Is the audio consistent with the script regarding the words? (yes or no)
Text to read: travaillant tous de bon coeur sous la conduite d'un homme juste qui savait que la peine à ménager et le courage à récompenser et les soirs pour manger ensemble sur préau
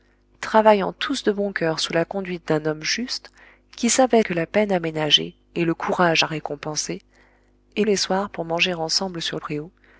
yes